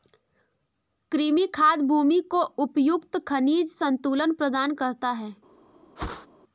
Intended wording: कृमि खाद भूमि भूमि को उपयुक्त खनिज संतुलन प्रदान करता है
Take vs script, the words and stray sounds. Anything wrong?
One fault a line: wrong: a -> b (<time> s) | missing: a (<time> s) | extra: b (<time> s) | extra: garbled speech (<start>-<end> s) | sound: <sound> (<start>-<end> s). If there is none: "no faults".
missing: भूमि (2.2 s)
sound: whoosh (6.0-6.3 s)